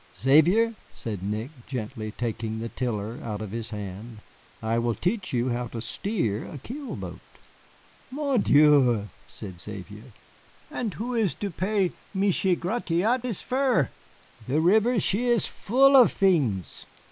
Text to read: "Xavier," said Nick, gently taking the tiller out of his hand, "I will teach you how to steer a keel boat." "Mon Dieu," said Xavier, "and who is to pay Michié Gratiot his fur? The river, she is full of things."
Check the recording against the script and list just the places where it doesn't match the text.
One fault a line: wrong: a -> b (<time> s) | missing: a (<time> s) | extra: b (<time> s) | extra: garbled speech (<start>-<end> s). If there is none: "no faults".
no faults